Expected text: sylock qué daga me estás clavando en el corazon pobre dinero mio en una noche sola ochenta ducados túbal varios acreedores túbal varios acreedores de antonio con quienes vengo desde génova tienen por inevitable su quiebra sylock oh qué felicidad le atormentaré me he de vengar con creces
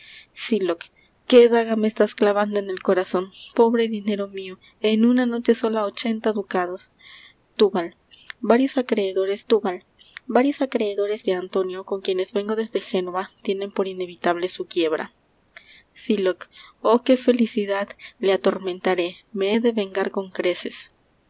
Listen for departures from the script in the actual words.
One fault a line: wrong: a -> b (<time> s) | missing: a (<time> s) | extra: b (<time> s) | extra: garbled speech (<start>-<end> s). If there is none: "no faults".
no faults